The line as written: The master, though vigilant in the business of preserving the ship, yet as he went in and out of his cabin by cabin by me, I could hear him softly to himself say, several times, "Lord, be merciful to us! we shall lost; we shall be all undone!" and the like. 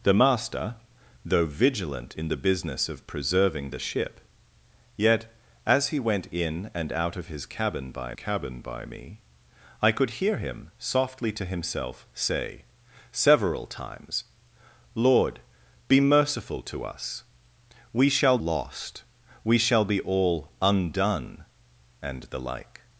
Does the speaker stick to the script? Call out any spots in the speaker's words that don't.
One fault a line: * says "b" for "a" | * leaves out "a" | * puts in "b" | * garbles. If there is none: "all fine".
all fine